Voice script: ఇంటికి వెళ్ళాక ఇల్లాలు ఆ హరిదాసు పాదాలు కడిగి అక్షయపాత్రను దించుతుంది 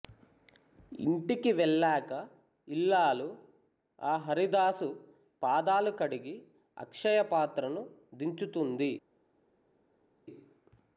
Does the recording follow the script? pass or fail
pass